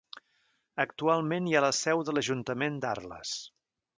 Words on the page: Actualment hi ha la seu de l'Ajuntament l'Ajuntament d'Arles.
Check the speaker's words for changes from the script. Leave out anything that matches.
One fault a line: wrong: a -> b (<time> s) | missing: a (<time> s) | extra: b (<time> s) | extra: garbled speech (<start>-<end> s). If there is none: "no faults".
missing: l'Ajuntament (2.8 s)